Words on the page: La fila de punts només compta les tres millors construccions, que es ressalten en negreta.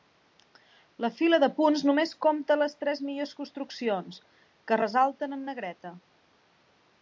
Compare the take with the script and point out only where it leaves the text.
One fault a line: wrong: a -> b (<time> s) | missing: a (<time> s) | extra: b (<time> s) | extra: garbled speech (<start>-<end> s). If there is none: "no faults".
no faults